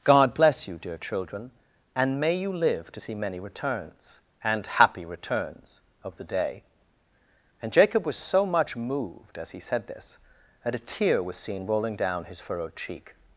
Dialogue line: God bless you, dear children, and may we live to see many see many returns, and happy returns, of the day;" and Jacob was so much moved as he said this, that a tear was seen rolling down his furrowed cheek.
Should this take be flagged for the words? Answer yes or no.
yes